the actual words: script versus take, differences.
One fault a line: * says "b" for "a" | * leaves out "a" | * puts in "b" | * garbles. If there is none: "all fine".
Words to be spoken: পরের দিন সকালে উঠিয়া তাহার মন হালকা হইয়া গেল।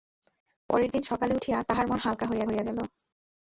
* puts in "হইয়া"